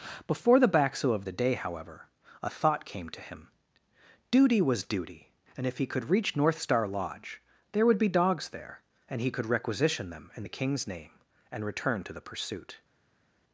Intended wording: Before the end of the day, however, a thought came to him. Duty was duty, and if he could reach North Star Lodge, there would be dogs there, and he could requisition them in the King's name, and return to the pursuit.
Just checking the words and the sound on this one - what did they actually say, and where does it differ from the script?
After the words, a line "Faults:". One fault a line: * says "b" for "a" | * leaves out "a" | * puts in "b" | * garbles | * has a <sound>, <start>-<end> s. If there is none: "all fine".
Before the baxo of the day, however, a thought came to him. Duty was duty, and if he could reach North Star Lodge, there would be dogs there, and he could requisition them in the King's name, and return to the pursuit.
Faults:
* says "baxo" for "end"